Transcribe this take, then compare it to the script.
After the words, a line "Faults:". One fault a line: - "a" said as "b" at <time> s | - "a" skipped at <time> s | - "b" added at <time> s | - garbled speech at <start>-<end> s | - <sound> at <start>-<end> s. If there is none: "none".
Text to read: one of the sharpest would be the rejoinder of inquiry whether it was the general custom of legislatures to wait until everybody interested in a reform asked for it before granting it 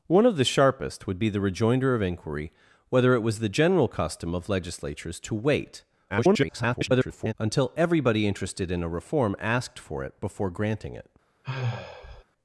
one of the sharpest would be the rejoinder of inquiry whether it was the general custom of legislatures to wait [garbled] until everybody interested in a reform asked for it before granting it
Faults:
- garbled speech at 6.1-7.3 s
- sigh at 11.4-12.2 s